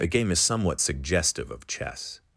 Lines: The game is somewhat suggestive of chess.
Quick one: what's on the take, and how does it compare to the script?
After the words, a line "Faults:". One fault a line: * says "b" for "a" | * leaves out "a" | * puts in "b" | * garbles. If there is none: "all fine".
The game is somewhat suggestive of chess.
Faults:
all fine